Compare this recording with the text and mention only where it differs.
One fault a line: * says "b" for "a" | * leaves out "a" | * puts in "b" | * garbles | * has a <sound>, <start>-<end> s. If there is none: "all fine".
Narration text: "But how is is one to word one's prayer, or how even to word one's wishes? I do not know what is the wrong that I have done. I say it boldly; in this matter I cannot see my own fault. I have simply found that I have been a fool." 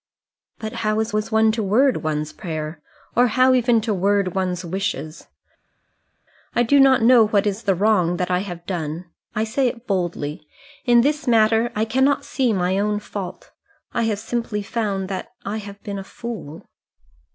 all fine